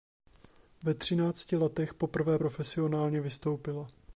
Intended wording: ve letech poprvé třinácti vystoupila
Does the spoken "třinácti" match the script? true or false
false